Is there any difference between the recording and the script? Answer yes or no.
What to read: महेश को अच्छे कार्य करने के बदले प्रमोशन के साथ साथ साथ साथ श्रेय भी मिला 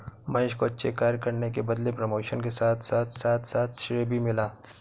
no